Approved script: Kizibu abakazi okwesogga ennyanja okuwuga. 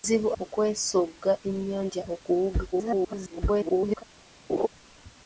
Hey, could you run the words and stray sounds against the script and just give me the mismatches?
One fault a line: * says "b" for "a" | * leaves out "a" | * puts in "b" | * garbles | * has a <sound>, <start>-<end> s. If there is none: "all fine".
* leaves out "abakazi"
* garbles
* has a laugh, 4.5-4.7 s